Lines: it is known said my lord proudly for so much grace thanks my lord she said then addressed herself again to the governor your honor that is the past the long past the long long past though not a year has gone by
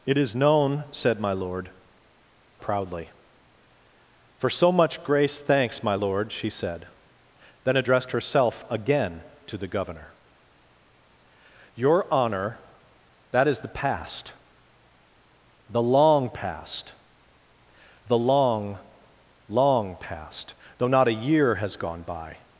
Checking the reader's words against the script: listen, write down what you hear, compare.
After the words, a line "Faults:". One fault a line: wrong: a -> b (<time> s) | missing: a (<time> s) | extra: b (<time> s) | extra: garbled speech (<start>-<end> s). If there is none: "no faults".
it is known said my lord proudly for so much grace thanks my lord she said then addressed herself again to the governor your honor that is the past the long past the long long past though not a year has gone by
Faults:
no faults